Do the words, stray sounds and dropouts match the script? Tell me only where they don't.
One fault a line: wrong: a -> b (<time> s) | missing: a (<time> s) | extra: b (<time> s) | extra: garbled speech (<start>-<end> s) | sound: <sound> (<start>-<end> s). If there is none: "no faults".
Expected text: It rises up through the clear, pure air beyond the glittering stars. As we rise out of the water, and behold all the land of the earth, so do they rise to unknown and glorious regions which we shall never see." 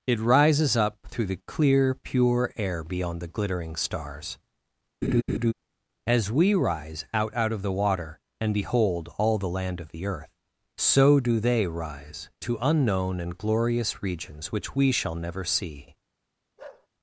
sound: laugh (5.0-5.5 s)
extra: out (7.3 s)
sound: bark (16.6-16.9 s)